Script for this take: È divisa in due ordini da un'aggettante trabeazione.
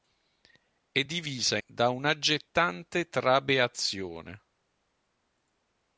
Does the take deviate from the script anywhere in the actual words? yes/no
yes